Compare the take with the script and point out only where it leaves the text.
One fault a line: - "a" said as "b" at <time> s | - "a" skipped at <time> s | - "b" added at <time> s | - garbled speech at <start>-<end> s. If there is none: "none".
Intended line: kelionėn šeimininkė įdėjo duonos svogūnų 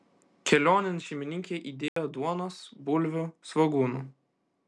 - "bulvių" added at 2.9 s